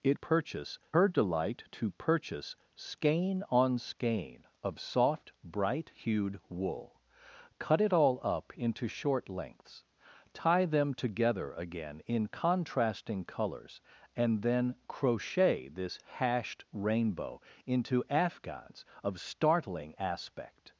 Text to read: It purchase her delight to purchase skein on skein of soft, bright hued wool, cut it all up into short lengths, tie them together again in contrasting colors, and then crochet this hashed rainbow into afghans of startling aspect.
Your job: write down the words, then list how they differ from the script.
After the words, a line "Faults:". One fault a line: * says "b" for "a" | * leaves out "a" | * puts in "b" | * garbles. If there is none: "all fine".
It purchase her delight to purchase skein on skein of soft, bright hued wool, cut it all up into short lengths, tie them together again in contrasting colors, and then crochet this hashed rainbow into afghans of startling aspect.
Faults:
all fine